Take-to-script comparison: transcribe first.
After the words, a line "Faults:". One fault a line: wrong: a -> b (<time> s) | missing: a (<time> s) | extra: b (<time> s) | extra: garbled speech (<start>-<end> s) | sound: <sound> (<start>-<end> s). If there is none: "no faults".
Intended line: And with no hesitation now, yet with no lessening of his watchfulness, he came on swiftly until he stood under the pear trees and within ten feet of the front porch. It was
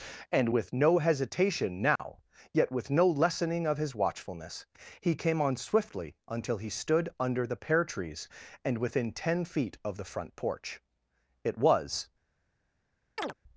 And with no hesitation now, yet with no lessening of his watchfulness, he came on swiftly until he stood under the pear trees and within ten feet of the front porch. It was
Faults:
sound: dropout (2.0-2.0 s)
sound: chirp (13.2-13.3 s)